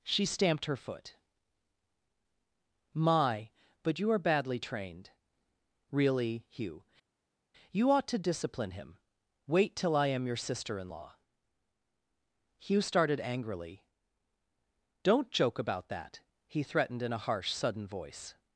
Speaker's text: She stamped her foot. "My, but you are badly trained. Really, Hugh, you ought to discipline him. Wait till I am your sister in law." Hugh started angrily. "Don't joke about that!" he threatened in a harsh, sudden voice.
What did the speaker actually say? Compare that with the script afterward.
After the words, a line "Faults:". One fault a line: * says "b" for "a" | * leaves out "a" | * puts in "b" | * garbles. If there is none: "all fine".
She stamped her foot. "My, but you are badly trained. Really, Hugh, you ought to discipline him. Wait till I am your sister in law." Hugh started angrily. "Don't joke about that!" he threatened in a harsh, sudden voice.
Faults:
all fine